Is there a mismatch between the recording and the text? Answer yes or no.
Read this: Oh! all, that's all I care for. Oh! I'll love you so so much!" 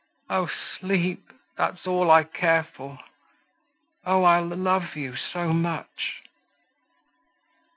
yes